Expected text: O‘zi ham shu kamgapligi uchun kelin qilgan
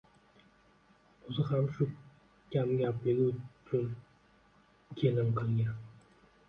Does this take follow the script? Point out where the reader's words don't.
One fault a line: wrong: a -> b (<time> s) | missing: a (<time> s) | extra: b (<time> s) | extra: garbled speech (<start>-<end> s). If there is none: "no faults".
no faults